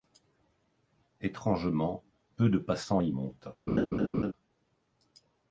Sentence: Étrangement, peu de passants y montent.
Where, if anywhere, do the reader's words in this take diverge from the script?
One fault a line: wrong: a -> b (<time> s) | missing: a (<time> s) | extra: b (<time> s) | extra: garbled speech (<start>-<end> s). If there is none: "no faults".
no faults